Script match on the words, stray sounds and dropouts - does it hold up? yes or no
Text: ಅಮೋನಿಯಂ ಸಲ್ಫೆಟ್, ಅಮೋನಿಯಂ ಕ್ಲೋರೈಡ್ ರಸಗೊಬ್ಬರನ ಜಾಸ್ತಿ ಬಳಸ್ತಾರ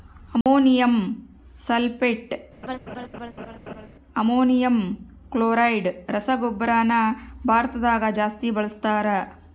no